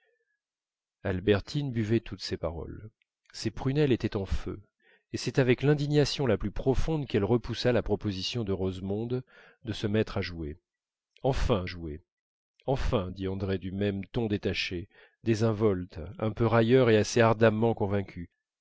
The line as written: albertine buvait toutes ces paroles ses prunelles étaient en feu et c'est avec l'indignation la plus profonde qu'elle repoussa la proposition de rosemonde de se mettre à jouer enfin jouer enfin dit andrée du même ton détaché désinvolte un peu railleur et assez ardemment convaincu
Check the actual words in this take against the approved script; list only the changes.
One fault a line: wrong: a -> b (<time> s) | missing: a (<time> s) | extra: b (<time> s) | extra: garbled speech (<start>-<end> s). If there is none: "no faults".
no faults